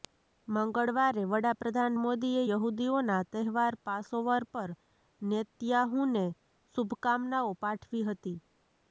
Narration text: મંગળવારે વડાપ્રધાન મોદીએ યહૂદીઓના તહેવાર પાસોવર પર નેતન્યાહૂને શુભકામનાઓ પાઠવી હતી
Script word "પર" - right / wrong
right